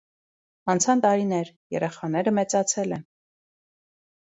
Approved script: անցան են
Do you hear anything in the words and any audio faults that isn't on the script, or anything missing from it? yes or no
yes